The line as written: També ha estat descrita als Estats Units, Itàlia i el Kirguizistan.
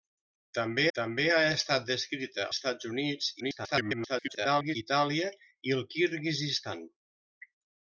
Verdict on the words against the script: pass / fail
fail